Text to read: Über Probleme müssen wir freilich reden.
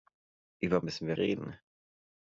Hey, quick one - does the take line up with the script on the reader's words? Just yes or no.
no